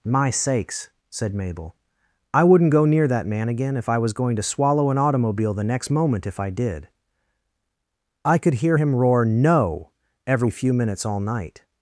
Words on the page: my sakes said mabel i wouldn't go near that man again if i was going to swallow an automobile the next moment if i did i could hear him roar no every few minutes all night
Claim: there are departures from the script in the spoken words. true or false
false